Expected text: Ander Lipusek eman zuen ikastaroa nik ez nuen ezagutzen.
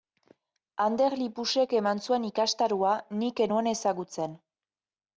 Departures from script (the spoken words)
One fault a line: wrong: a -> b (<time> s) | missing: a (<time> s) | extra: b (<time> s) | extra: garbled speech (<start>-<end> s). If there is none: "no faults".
no faults